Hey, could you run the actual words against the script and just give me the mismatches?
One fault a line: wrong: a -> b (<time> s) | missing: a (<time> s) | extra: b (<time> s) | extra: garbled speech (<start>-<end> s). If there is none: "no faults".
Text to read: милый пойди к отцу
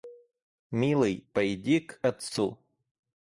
no faults